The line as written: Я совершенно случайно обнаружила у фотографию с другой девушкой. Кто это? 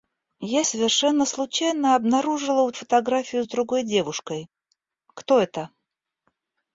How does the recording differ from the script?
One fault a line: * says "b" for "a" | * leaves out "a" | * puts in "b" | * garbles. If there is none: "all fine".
all fine